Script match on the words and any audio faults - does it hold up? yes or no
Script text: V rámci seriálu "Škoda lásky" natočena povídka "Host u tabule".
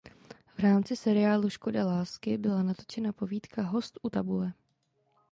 no